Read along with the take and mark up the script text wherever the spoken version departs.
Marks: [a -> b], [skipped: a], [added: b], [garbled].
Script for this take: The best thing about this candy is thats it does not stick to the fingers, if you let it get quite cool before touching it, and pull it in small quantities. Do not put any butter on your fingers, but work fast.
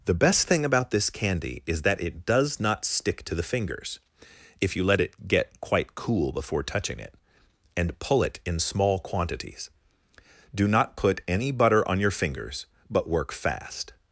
The best thing about this candy is [thats -> that] it does not stick to the fingers, if you let it get quite cool before touching it, and pull it in small quantities. Do not put any butter on your fingers, but work fast.